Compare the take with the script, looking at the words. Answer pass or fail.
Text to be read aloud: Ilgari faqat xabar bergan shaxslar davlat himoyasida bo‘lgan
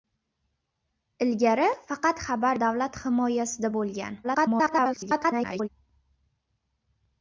fail